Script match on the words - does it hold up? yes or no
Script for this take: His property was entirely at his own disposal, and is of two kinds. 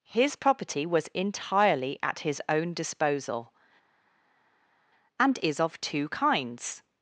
yes